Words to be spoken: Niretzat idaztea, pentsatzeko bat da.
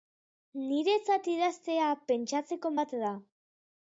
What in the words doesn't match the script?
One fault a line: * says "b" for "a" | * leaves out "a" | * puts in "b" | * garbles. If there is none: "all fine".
all fine